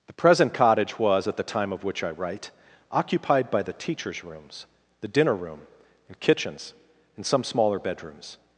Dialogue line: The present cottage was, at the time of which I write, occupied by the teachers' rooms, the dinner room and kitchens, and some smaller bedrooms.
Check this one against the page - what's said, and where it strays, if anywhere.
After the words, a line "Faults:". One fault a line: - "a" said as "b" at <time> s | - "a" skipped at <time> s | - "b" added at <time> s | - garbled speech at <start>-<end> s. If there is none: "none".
The present cottage was, at the time of which I write, occupied by the teachers' rooms, the dinner room and kitchens, and some smaller bedrooms.
Faults:
none